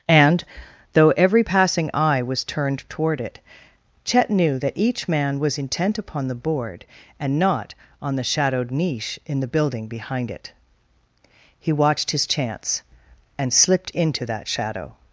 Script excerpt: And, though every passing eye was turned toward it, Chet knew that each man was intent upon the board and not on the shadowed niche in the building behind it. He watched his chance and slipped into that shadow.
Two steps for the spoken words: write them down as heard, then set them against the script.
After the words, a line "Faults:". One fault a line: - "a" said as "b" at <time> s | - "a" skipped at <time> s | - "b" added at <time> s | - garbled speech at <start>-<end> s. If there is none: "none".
And, though every passing eye was turned toward it, Chet knew that each man was intent upon the board and not on the shadowed niche in the building behind it. He watched his chance and slipped into that shadow.
Faults:
none